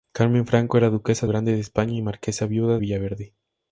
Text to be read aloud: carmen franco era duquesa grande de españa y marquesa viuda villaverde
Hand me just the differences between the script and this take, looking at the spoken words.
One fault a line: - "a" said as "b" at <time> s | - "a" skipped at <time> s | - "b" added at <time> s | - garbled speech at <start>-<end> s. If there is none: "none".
none